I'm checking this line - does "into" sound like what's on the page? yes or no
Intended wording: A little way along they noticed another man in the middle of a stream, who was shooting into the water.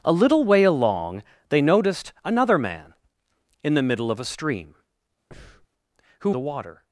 no